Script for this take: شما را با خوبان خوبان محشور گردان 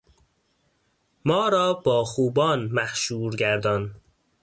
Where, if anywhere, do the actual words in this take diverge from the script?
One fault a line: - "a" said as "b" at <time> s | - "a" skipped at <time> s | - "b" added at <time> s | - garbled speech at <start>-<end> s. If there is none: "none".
- "شما" said as "ما" at 1.2 s
- "خوبان" skipped at 2.6 s